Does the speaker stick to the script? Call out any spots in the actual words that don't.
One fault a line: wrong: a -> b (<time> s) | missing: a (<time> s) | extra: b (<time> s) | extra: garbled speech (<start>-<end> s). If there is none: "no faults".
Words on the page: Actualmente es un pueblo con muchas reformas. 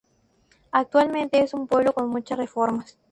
no faults